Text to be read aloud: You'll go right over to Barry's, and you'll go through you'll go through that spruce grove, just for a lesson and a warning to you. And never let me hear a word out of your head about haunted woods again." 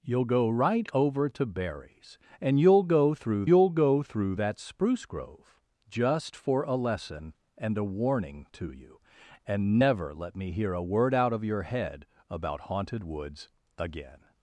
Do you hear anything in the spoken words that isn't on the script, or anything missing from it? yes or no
no